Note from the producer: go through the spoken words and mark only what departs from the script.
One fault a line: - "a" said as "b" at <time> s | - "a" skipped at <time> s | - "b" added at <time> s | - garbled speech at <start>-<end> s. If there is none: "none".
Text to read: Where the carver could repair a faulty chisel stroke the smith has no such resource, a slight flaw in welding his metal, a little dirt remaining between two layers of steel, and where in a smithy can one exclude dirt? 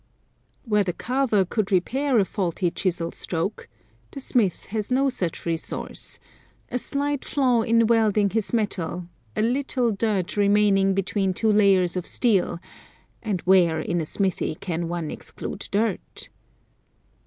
none